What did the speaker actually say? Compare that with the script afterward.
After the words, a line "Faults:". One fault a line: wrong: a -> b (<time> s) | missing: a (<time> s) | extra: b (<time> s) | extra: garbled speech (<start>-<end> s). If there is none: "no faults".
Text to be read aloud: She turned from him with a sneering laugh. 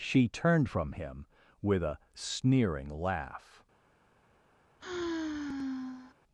She turned from him with a sneering laugh.
Faults:
no faults